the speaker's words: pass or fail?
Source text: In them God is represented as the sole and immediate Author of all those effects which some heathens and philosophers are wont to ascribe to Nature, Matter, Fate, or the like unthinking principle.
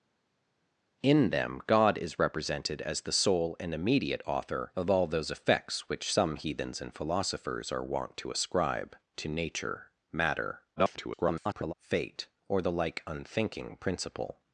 fail